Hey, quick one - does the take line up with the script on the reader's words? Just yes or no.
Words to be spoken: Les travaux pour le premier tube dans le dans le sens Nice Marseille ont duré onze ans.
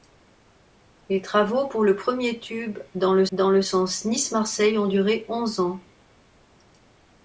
yes